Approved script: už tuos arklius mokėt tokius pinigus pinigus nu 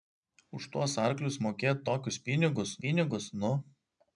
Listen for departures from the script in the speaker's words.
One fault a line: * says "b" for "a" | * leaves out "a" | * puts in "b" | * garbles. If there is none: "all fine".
all fine